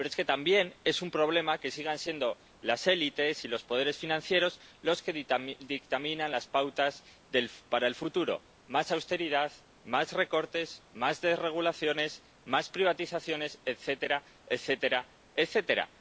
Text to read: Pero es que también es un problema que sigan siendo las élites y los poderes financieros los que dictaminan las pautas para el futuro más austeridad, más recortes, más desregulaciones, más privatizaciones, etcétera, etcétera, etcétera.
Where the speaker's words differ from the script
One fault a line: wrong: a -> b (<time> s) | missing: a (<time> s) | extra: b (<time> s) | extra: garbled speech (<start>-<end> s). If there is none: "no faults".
no faults